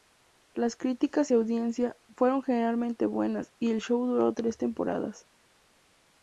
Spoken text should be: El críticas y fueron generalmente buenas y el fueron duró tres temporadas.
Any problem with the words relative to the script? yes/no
yes